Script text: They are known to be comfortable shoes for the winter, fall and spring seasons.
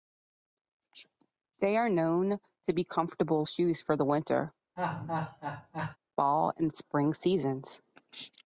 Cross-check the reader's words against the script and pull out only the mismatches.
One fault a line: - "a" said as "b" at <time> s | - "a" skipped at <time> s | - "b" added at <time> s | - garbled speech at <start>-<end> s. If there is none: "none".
none